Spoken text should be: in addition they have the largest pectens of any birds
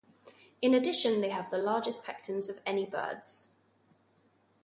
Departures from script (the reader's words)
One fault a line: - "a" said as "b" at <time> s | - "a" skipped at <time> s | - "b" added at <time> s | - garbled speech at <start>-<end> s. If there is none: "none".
none